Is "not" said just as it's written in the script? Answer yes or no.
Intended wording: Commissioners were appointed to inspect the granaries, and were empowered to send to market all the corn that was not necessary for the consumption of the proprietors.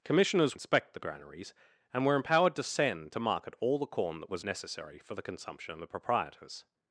no